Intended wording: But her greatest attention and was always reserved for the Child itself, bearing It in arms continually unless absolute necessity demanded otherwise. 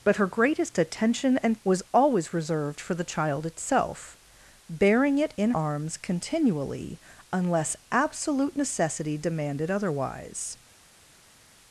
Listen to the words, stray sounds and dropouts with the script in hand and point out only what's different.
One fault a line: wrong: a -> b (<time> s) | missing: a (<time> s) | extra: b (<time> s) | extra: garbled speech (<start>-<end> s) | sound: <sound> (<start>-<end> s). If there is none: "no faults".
no faults